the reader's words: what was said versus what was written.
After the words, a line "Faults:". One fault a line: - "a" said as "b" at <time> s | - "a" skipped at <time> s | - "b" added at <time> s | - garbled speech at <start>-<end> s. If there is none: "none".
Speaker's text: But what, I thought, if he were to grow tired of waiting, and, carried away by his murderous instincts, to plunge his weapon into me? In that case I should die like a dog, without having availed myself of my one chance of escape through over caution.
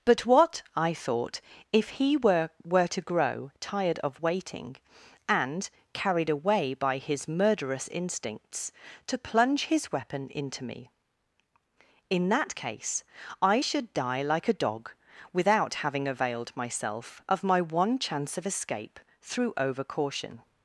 But what, I thought, if he were were to grow tired of waiting, and, carried away by his murderous instincts, to plunge his weapon into me? In that case I should die like a dog, without having availed myself of my one chance of escape through over caution.
Faults:
- "were" added at 2.6 s